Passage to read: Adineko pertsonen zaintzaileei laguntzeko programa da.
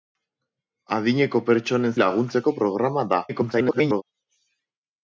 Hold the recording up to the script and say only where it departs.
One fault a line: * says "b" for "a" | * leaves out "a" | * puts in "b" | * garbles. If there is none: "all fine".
* leaves out "zaintzaileei"
* garbles